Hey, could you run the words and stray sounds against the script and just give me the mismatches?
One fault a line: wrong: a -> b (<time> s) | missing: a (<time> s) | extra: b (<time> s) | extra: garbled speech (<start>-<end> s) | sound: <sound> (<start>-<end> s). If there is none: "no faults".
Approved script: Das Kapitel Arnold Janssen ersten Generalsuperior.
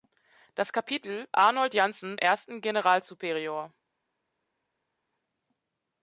no faults